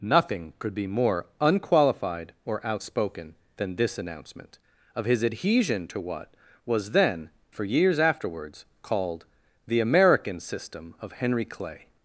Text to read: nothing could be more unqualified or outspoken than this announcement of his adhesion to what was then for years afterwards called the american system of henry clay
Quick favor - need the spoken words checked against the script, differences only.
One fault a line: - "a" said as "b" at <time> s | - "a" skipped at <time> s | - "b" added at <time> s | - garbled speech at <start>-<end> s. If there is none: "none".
none